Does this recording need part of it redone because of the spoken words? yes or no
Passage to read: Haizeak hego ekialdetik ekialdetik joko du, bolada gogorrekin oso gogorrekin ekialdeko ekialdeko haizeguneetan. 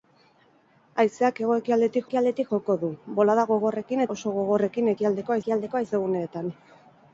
no